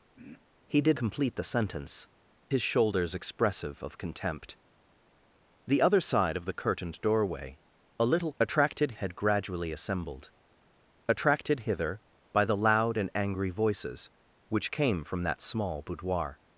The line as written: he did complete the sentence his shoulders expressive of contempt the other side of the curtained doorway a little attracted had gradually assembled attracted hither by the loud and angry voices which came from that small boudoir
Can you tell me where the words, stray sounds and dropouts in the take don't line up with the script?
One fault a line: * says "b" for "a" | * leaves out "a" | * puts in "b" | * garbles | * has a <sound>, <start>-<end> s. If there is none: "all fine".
* has a throat clearing, 0.1-0.5 s